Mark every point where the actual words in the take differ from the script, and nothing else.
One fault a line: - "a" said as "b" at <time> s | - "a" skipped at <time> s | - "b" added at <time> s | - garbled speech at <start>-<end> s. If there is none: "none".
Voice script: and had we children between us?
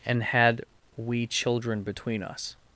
none